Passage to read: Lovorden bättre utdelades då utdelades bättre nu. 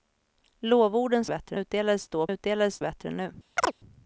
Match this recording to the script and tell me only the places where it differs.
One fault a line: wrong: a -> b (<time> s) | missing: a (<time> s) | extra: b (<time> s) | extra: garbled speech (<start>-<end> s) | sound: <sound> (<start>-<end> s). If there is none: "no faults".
sound: chirp (3.6-3.7 s)